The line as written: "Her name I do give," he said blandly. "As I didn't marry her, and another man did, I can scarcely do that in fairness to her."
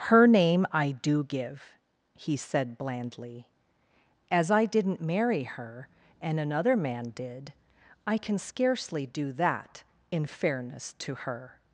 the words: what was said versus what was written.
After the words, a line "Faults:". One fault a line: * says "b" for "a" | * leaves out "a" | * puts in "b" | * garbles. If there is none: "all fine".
"Her name I do give," he said blandly. "As I didn't marry her, and another man did, I can scarcely do that in fairness to her."
Faults:
all fine